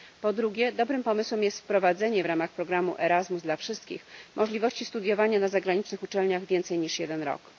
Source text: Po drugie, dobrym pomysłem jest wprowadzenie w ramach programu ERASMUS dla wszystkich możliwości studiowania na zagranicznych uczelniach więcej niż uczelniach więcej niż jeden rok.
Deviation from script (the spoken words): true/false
true